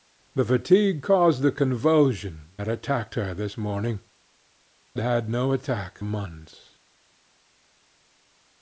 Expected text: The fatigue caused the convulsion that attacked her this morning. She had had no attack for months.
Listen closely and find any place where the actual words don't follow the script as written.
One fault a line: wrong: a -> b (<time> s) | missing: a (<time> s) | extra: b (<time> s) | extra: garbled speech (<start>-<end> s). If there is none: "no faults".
missing: She (4.0 s)
missing: had (5.3 s)
missing: for (6.0 s)